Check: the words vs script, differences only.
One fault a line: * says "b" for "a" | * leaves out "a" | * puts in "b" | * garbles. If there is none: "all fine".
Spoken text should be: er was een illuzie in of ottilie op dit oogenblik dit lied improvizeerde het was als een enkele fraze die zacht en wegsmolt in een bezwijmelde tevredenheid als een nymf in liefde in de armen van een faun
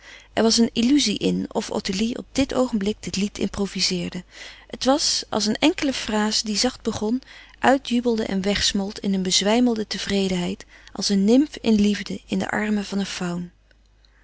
* puts in "begon uitjubelde"